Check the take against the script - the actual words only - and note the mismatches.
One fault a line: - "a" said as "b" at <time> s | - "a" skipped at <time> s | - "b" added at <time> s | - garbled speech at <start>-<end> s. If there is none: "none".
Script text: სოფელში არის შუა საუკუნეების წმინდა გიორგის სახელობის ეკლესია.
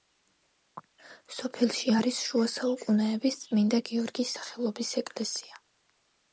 none